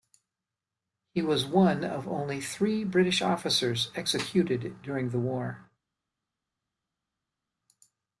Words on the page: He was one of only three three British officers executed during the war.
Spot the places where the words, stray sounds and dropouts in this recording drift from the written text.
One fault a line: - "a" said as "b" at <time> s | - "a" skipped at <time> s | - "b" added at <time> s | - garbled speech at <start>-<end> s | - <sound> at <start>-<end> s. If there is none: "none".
- "three" skipped at 2.8 s